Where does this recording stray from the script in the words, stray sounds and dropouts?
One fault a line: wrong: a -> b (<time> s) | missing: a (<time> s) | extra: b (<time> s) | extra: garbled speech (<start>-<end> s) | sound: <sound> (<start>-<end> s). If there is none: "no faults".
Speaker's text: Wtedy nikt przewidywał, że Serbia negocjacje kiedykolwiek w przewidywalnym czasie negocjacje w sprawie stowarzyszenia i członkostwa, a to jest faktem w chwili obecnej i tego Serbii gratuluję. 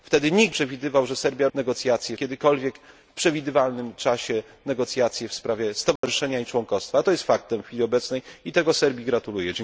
sound: dropout (6.0-6.0 s)